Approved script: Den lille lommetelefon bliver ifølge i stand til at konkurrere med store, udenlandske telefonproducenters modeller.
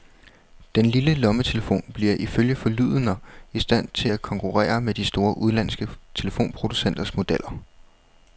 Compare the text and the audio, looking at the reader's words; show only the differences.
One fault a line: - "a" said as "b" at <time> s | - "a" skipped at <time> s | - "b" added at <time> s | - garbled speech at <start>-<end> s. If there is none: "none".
- "forlydender" added at 2.5 s
- "de" added at 4.9 s